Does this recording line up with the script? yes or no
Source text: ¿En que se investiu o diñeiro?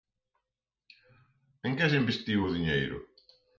yes